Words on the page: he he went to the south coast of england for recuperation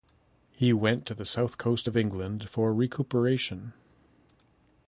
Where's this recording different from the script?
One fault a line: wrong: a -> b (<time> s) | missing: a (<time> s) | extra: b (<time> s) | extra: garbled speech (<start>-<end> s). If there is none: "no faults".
missing: he (0.7 s)